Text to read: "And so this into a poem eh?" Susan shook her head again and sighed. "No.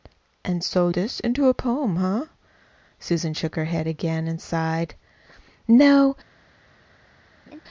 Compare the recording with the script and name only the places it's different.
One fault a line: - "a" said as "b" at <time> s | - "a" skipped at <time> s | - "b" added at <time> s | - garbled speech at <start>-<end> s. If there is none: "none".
none